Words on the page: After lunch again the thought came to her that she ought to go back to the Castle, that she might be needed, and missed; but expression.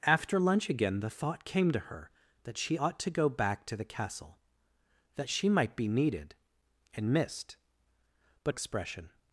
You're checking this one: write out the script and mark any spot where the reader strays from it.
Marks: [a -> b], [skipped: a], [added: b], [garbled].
After lunch again the thought came to her that she ought to go back to the Castle, that she might be needed, and missed; but expression.